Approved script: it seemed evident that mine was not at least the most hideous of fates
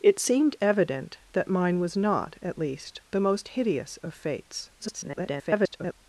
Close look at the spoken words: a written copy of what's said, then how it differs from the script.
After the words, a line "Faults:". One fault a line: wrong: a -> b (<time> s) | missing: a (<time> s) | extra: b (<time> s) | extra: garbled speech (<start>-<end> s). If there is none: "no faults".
it seemed evident that mine was not at least the most hideous of fates [garbled]
Faults:
extra: garbled speech (4.8-5.9 s)